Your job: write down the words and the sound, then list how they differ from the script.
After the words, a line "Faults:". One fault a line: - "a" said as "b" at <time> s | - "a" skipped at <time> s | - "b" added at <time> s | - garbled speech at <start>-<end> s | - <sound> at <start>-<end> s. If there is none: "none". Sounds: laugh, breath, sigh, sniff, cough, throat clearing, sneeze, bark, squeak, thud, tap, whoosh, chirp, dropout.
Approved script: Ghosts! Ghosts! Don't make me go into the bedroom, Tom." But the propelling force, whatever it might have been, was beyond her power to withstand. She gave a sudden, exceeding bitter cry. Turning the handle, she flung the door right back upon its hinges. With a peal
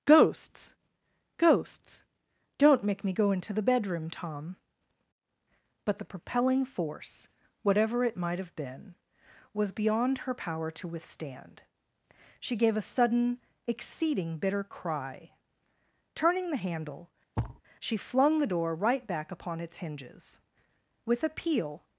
Ghosts! Ghosts! Don't make me go into the bedroom, Tom." But the propelling force, whatever it might have been, was beyond her power to withstand. She gave a sudden, exceeding bitter cry. Turning the handle, she flung the door right back upon its hinges. With a peal
Faults:
- thud at 17.4-17.6 s